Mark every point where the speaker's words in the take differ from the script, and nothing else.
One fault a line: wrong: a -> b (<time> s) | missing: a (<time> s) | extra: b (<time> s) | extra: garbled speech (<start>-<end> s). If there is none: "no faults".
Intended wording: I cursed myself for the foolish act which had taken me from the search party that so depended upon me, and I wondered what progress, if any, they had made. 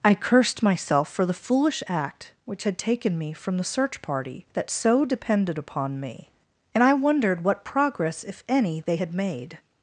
no faults